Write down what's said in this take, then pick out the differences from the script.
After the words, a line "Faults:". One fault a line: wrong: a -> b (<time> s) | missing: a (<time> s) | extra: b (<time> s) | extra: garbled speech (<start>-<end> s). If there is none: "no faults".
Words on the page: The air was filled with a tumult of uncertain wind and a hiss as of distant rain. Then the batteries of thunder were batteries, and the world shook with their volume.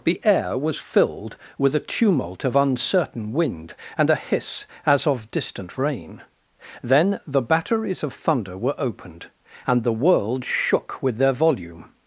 The air was filled with a tumult of uncertain wind and a hiss as of distant rain. Then the batteries of thunder were opened, and the world shook with their volume.
Faults:
wrong: batteries -> opened (8.8 s)